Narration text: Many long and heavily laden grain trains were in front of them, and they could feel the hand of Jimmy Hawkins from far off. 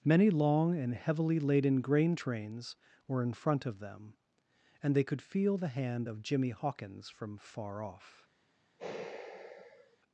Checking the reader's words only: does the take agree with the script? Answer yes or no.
yes